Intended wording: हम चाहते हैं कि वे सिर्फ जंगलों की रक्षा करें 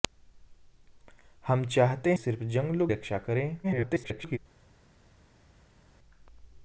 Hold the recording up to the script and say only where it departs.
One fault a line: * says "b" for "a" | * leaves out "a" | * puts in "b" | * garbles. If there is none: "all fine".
* leaves out "हैं कि वे"
* leaves out "की"
* garbles